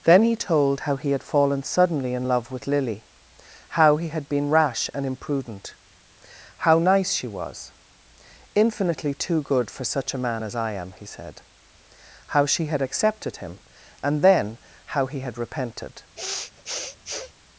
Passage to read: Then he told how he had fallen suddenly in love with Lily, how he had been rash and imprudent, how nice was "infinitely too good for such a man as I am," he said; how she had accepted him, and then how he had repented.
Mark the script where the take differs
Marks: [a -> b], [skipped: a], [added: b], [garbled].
Then he told how he had fallen suddenly in love with Lily, how he had been rash and imprudent, how nice [added: she] was "infinitely too good for such a man as I am," he said; how she had accepted him, and then how he had repented.